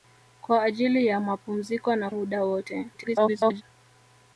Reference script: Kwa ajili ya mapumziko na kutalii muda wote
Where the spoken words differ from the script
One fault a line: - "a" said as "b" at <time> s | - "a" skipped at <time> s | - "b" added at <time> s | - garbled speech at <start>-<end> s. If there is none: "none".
- "kutalii" skipped at 2.1 s
- garbled speech at 2.9-3.6 s